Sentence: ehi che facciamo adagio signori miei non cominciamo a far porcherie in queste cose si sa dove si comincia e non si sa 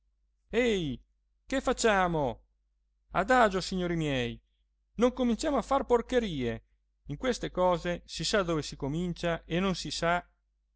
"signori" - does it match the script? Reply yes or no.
yes